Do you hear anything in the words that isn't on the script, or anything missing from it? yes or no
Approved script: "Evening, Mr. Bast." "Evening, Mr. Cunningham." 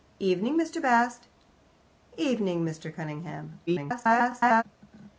yes